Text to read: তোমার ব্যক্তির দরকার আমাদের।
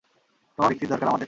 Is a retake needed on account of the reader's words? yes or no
no